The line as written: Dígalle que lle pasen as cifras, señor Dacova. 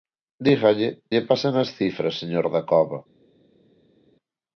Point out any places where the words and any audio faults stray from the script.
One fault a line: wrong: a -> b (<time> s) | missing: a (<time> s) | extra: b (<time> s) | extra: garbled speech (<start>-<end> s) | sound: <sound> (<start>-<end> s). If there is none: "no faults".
missing: que (0.9 s)